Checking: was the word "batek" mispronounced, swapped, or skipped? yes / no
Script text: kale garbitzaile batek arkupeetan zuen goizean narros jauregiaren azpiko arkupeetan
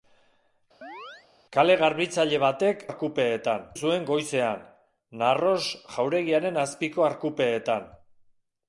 no